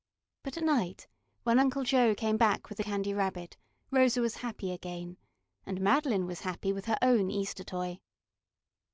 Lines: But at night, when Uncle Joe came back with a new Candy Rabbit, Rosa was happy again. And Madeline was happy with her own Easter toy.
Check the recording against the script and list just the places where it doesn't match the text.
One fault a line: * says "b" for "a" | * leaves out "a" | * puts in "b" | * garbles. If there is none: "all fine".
* leaves out "new"